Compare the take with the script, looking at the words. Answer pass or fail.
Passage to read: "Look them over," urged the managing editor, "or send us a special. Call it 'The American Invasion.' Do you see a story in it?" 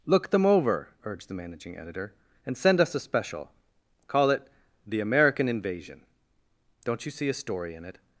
fail